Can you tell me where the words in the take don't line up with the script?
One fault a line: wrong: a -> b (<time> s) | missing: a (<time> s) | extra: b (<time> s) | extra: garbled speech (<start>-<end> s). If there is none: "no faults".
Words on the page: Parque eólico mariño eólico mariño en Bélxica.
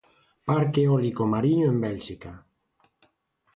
missing: eólico mariño (1.7 s)